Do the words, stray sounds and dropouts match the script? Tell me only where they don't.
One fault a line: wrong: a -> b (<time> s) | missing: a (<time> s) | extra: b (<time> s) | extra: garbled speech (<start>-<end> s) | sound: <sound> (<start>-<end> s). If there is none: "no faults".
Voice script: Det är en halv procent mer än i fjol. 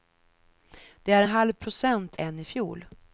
missing: en (1.2 s)
missing: mer (2.2 s)